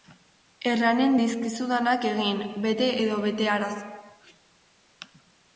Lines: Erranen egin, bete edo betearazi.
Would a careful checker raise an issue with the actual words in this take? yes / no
yes